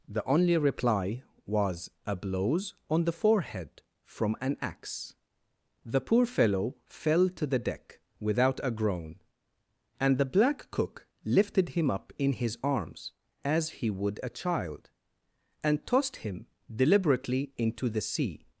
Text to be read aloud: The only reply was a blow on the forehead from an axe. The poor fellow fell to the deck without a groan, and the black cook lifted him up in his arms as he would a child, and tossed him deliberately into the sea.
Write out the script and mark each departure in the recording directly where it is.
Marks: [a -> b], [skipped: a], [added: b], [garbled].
The only reply was a [blow -> blows] on the forehead from an axe. The poor fellow fell to the deck without a groan, and the black cook lifted him up in his arms as he would a child, and tossed him deliberately into the sea.